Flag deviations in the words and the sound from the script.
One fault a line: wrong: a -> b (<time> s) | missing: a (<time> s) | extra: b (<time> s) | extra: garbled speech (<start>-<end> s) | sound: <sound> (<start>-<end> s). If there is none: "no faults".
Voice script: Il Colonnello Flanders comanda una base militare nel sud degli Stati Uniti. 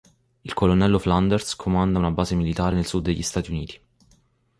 no faults